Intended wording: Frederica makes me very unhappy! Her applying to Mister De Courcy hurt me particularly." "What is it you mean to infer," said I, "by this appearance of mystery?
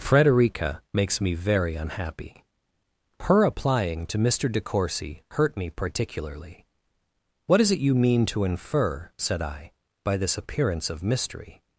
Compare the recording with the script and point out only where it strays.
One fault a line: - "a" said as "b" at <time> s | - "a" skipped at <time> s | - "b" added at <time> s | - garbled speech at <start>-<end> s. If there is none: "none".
none